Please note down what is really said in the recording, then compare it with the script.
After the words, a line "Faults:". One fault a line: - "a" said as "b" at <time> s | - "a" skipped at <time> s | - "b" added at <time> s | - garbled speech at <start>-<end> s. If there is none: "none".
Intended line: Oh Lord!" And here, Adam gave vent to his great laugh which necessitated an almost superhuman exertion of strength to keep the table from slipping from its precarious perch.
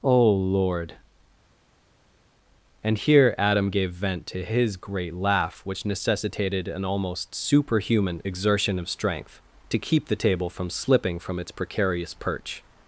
Oh Lord!" And here, Adam gave vent to his great laugh which necessitated an almost superhuman exertion of strength to keep the table from slipping from its precarious perch.
Faults:
none